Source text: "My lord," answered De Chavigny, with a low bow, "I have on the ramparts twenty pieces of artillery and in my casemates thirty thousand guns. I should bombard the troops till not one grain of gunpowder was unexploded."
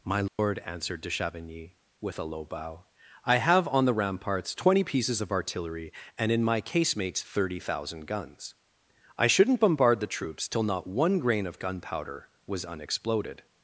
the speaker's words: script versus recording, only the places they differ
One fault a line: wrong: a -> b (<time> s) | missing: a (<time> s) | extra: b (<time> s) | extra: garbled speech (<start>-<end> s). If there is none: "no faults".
wrong: should -> shouldn't (9.3 s)